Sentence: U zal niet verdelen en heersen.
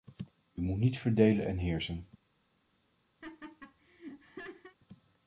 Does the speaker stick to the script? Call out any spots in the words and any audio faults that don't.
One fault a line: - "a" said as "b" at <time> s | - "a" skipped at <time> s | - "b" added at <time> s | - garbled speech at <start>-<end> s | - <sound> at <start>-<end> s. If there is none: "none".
- "zal" said as "moet" at 0.6 s
- laugh at 3.2-4.8 s